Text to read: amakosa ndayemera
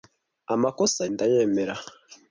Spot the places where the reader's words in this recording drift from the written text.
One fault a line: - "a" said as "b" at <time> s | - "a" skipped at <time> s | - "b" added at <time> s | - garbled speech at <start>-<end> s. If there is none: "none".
none